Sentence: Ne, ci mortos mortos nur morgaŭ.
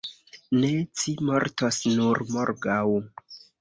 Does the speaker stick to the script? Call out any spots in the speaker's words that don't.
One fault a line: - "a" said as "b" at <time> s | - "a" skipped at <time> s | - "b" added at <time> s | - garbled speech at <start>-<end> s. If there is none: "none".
- "mortos" skipped at 1.8 s